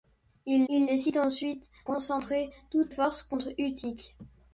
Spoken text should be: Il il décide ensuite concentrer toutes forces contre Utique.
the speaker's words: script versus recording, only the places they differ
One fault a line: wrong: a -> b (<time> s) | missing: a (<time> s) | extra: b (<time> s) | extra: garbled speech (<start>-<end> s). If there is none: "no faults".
no faults